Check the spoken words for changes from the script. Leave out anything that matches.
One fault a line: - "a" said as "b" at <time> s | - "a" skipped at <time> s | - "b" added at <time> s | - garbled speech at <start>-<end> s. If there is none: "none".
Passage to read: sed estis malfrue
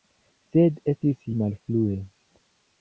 none